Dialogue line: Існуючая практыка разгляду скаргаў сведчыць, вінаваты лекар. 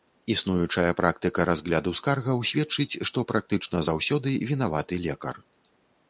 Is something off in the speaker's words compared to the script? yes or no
yes